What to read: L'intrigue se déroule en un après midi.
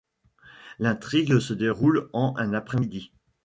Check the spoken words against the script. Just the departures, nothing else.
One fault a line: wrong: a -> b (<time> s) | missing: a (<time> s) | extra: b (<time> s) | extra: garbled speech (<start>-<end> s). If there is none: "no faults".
no faults